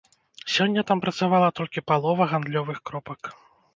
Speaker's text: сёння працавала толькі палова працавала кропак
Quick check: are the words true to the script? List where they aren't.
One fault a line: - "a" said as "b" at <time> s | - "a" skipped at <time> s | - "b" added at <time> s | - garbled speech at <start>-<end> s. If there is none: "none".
- "там" added at 0.9 s
- "працавала" said as "гандлёвых" at 2.3 s